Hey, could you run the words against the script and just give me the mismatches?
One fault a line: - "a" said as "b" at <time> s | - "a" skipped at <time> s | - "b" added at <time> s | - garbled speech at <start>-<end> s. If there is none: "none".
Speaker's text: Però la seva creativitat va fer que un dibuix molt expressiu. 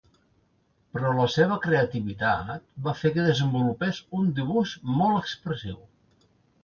- "desenvolupés" added at 3.3 s